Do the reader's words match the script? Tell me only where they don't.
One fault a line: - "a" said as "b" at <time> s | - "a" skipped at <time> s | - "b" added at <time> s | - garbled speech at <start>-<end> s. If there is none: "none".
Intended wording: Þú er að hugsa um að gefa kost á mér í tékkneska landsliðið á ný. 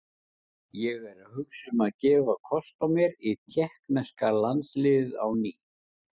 - "Þú" said as "Ég" at 0.8 s